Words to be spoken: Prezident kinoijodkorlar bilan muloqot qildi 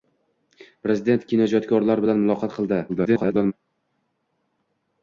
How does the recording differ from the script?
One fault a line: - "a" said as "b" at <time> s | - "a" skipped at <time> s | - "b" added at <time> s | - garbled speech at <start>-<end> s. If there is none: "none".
- garbled speech at 2.9-3.5 s